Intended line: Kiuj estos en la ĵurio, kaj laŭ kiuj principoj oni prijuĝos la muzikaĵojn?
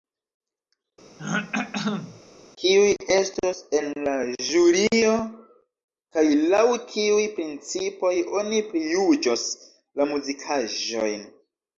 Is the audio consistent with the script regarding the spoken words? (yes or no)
yes